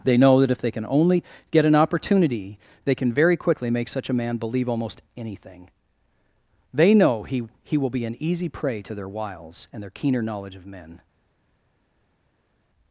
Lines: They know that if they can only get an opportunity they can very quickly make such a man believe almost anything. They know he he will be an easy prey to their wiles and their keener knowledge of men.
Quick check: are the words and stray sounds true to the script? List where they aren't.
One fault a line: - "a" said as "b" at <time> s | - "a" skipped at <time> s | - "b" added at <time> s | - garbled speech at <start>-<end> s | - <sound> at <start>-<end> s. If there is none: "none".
none